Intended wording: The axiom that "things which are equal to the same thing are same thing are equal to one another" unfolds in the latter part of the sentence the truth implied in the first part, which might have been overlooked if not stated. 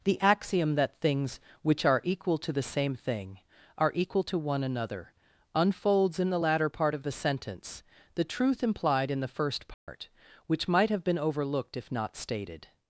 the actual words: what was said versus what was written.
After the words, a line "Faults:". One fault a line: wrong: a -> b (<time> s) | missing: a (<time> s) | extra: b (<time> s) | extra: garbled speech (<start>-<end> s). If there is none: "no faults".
The axiom that "things which are equal to the same thing are equal to one another" unfolds in the latter part of the sentence the truth implied in the first part, which might have been overlooked if not stated.
Faults:
missing: same thing are (3.9 s)